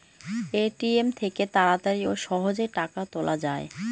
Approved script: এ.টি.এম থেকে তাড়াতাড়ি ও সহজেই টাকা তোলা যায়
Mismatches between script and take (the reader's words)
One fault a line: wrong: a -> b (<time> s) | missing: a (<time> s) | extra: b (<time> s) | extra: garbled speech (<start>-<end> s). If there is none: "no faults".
no faults